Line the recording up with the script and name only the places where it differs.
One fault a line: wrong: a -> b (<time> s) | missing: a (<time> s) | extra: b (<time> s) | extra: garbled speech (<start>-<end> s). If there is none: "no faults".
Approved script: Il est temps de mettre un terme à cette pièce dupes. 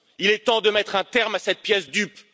no faults